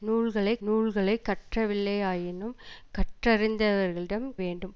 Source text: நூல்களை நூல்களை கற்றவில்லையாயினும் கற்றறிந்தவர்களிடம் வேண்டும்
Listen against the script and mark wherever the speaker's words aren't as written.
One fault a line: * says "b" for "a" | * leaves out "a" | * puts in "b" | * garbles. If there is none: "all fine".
all fine